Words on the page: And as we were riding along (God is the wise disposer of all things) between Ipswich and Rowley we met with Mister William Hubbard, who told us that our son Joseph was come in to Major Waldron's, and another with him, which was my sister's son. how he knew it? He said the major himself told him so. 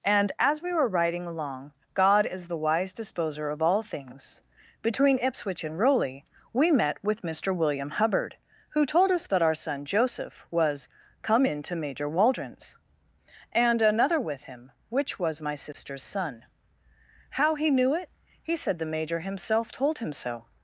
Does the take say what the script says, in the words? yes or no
yes